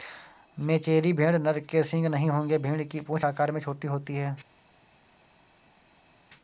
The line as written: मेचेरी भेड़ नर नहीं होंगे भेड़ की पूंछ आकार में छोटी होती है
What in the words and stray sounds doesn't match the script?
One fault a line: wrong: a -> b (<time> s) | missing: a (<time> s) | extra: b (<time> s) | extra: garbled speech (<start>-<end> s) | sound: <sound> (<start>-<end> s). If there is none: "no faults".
extra: के सींग (1.6 s)